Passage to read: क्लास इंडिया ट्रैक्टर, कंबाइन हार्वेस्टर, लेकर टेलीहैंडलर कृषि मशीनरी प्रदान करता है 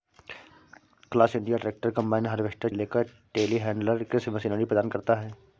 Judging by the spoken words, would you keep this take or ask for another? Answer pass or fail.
pass